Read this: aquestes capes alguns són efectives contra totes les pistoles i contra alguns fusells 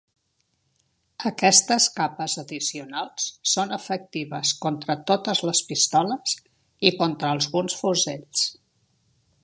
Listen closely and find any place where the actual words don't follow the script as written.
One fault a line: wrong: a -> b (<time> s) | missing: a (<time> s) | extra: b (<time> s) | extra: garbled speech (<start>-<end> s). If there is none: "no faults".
wrong: alguns -> addicionals (2.4 s)